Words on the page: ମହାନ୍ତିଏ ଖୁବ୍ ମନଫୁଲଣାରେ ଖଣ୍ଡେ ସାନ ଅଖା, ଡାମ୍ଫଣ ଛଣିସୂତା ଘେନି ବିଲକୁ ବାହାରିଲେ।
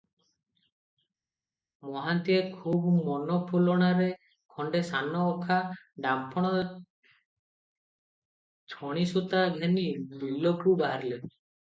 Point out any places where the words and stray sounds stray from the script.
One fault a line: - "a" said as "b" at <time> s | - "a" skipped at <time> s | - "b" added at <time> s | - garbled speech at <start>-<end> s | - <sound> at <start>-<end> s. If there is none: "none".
none